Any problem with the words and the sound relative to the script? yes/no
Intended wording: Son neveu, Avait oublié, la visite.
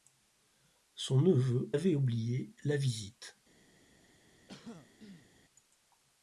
yes